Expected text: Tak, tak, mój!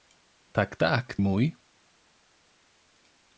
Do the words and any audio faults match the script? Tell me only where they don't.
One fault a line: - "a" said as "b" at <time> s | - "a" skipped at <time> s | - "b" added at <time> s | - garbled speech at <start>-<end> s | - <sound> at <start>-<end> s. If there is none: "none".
none